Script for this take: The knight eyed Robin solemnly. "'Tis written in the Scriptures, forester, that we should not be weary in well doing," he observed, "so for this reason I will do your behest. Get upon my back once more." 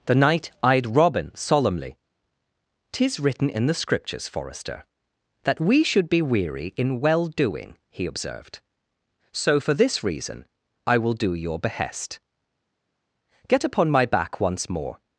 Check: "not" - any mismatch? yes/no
yes